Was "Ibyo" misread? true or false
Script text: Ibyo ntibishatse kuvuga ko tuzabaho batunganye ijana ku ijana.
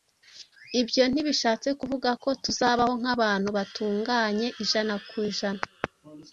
false